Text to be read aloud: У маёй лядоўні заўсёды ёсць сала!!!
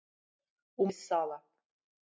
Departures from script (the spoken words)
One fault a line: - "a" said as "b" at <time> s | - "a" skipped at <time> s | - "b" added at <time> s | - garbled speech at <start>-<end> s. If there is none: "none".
- "маёй лядоўні заўсёды" skipped at 0.9 s